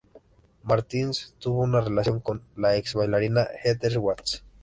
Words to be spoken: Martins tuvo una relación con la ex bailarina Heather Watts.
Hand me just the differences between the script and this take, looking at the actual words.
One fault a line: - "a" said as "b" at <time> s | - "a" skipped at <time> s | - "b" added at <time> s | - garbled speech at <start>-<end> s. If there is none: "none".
none